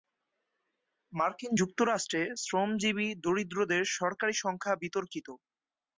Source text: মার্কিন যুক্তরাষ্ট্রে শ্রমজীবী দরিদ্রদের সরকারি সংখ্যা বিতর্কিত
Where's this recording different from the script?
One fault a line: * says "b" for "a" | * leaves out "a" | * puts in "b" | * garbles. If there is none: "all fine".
all fine